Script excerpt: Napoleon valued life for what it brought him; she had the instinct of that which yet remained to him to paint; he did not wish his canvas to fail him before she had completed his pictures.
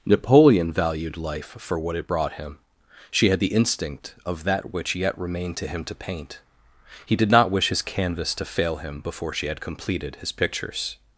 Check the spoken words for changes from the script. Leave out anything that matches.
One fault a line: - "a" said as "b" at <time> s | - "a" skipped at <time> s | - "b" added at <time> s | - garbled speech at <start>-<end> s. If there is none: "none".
none